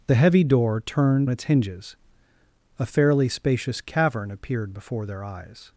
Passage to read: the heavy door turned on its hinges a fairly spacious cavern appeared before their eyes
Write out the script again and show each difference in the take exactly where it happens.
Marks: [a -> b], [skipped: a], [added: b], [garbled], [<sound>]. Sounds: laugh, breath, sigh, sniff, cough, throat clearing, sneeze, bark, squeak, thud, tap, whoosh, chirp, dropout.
the heavy door turned [skipped: on] its hinges a fairly spacious cavern appeared before their eyes